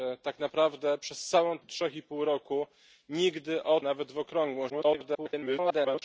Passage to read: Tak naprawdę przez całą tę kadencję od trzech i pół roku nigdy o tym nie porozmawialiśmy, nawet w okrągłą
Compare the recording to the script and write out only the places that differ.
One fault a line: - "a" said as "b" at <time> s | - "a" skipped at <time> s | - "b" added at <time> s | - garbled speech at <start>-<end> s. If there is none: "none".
- "tę kadencję" skipped at 1.6 s
- "tym nie porozmawialiśmy" skipped at 3.8 s
- garbled speech at 4.7-6.0 s